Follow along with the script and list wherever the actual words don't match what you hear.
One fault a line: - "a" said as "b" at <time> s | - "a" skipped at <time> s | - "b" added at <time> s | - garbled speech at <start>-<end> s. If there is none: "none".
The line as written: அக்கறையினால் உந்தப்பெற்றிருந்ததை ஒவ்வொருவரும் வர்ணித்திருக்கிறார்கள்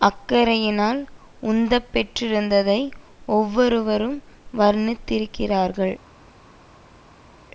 none